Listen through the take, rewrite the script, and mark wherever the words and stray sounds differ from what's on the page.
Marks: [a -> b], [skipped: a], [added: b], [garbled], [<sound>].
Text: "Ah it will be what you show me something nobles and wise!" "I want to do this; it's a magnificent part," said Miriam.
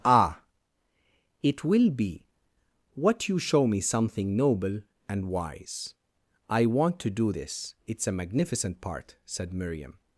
"Ah it will be what you show me something [nobles -> noble] and wise!" "I want to do this; it's a magnificent part," said Miriam.